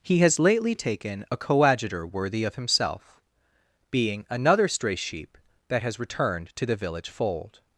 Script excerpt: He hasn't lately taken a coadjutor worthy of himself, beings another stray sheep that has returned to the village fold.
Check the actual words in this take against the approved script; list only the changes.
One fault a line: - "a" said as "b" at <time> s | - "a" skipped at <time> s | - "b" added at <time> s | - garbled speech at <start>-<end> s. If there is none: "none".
- "hasn't" said as "has" at 0.2 s
- "beings" said as "being" at 3.9 s